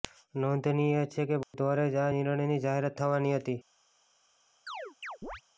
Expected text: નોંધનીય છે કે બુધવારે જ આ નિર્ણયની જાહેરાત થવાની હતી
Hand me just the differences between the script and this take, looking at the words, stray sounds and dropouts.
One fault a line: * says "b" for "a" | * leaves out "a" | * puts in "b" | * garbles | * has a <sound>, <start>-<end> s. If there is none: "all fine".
* has a dropout, 1.4-1.5 s
* has a chirp, 4.7-5.4 s